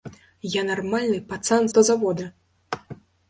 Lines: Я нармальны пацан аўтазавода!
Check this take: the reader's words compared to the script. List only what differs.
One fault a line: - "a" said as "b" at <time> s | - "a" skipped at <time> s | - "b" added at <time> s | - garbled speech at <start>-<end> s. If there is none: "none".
none